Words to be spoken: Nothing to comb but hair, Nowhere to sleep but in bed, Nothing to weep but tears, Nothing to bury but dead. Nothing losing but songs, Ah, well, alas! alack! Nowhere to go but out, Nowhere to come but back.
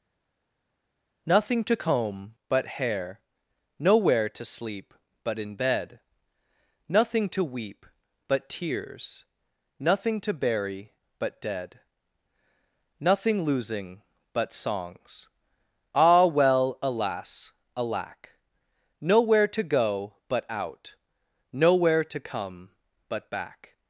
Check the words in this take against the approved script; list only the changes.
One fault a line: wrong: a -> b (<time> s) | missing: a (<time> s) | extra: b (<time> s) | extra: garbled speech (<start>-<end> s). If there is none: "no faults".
no faults